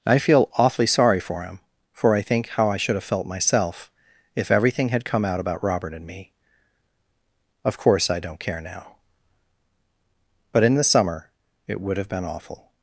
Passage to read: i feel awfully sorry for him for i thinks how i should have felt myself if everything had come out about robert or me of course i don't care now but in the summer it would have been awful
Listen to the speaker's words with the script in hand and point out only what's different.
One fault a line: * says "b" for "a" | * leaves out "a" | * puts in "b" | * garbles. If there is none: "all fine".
* says "think" for "thinks"
* says "and" for "or"